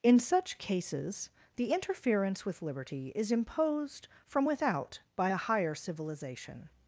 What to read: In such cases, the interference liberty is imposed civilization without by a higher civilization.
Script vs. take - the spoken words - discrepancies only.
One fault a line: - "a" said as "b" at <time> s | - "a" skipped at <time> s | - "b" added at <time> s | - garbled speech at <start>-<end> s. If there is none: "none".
- "with" added at 2.4 s
- "civilization" said as "from" at 4.2 s